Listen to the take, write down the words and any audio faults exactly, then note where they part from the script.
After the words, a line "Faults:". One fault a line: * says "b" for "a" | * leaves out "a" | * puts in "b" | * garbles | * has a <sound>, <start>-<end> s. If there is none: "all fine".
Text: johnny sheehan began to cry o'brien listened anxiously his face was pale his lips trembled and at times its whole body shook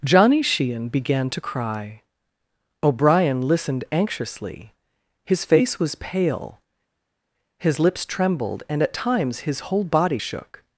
johnny sheehan began to cry o'brien listened anxiously his face was pale his lips trembled and at times his whole body shook
Faults:
* says "his" for "its"